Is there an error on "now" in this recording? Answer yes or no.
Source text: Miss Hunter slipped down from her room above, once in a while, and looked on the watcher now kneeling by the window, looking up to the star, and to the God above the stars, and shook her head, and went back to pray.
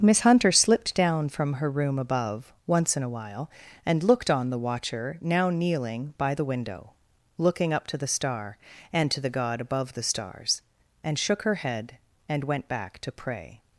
no